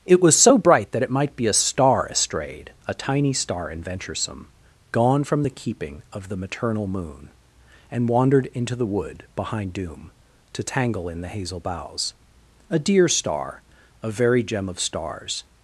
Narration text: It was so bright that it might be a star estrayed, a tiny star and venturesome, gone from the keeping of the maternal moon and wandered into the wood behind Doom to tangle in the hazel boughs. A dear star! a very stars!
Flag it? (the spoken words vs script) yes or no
yes